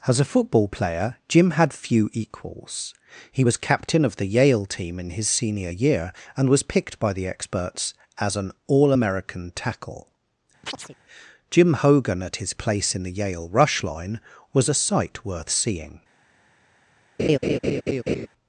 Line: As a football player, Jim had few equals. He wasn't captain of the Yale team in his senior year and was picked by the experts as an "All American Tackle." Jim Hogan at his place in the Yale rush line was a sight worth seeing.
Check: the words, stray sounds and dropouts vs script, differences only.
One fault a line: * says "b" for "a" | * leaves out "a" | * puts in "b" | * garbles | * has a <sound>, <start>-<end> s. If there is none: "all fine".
* says "was" for "wasn't"
* has a chirp, 10.6-11.0 s
* has a laugh, 17.2-18.3 s